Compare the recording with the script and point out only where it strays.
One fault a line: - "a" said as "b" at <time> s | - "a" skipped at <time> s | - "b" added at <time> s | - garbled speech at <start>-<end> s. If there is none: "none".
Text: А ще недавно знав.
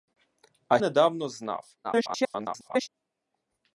- "ще" skipped at 0.8 s
- garbled speech at 1.8-2.9 s